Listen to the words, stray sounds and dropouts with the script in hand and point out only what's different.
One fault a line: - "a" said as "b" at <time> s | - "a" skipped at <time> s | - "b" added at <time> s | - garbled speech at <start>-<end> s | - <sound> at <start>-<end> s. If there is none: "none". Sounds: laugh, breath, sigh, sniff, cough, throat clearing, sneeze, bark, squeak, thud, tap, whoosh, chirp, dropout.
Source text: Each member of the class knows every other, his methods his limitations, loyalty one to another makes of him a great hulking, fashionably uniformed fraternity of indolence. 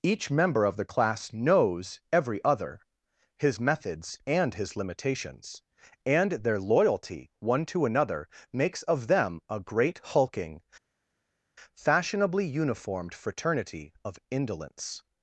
- "and" added at 4.3 s
- "and their" added at 6.1 s
- "him" said as "them" at 9.1 s